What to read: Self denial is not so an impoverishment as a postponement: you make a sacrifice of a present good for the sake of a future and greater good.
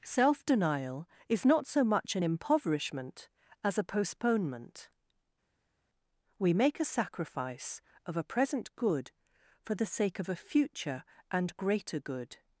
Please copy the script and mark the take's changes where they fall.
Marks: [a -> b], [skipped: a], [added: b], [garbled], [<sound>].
Self denial is not so [added: much] an impoverishment as a postponement: [you -> we] make a sacrifice of a present good for the sake of a future and greater good.